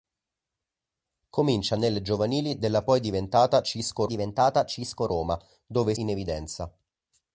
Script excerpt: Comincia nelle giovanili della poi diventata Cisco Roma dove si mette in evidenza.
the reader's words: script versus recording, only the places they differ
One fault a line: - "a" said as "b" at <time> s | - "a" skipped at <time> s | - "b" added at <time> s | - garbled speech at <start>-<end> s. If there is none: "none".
- "diventata Cisco" added at 4.1 s
- "si mette" skipped at 5.9 s